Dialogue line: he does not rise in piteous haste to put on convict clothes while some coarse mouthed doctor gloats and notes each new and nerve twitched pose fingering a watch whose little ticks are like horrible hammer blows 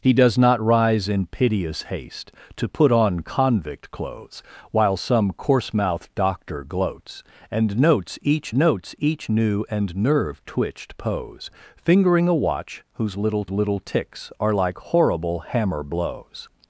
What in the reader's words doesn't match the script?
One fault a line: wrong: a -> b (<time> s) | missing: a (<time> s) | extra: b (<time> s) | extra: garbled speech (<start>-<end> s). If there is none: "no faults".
extra: notes each (8.5 s)
extra: little (13.5 s)